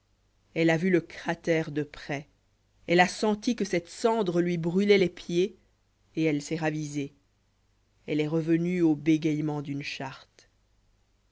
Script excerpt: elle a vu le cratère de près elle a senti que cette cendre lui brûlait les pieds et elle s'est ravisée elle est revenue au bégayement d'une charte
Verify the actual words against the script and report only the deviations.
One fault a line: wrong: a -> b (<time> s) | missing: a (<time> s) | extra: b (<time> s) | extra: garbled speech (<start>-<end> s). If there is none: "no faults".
no faults